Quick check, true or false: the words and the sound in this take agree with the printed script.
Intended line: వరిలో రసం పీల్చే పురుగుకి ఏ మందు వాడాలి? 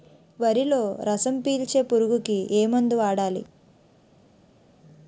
true